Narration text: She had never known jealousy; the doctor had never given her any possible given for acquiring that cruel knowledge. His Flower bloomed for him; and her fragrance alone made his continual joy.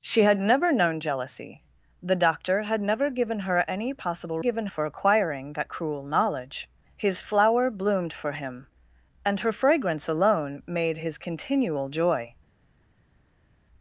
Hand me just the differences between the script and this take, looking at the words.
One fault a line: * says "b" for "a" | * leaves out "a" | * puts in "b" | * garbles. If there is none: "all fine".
all fine